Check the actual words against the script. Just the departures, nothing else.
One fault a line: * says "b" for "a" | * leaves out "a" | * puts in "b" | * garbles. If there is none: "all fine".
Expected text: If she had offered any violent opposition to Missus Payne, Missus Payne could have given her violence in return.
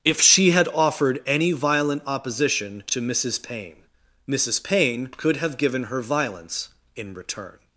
all fine